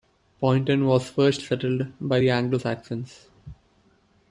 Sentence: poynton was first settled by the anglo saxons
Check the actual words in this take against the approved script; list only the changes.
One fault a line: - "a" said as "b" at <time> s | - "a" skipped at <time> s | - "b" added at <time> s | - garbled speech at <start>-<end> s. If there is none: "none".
none